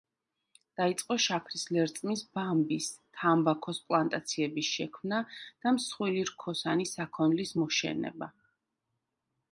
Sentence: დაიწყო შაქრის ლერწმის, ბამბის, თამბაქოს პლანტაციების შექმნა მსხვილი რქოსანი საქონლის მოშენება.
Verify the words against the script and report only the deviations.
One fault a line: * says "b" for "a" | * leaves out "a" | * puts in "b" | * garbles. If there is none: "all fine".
* puts in "და"